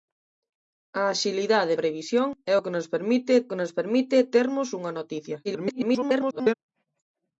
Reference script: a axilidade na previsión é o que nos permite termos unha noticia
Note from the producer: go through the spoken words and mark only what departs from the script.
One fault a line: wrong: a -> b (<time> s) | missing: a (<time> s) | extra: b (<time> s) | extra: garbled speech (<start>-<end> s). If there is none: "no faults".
missing: na (1.7 s)
extra: que nos permite (3.5 s)
extra: garbled speech (5.4-6.5 s)